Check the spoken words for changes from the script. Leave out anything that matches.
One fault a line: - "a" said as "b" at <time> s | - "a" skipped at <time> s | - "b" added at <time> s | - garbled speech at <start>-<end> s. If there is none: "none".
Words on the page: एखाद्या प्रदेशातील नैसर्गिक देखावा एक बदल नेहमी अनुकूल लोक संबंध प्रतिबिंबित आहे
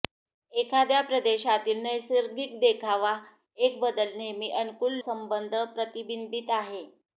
- "लोक" skipped at 4.9 s